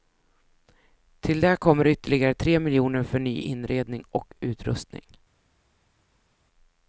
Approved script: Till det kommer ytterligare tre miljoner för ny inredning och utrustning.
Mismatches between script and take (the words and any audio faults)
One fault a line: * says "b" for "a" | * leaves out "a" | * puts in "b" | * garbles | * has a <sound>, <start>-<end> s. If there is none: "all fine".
all fine